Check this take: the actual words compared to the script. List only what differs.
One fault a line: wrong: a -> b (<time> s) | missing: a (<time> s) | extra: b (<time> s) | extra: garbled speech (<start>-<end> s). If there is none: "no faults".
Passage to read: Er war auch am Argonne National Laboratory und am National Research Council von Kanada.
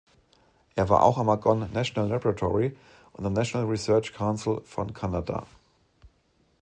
no faults